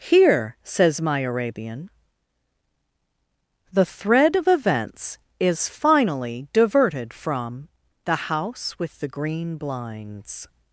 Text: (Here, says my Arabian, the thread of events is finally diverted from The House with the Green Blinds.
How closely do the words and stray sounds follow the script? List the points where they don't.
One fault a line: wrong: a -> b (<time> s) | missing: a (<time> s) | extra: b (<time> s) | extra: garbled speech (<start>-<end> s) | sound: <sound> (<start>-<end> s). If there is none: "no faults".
no faults